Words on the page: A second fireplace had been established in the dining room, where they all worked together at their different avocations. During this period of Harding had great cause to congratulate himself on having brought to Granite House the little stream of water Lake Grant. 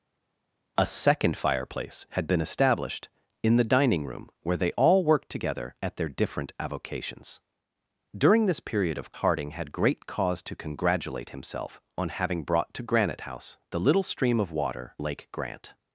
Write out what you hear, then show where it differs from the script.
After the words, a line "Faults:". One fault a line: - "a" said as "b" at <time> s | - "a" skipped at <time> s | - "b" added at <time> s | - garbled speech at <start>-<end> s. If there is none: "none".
A second fireplace had been established in the dining room, where they all worked together at their different avocations. During this period of Harding had great cause to congratulate himself on having brought to Granite House the little stream of water Lake Grant.
Faults:
none